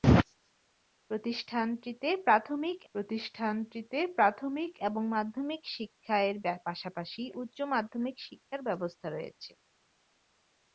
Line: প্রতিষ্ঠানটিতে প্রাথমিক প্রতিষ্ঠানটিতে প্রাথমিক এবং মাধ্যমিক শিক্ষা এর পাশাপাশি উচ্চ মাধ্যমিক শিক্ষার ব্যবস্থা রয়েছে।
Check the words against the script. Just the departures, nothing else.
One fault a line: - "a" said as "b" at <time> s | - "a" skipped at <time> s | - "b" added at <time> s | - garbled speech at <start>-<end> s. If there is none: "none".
none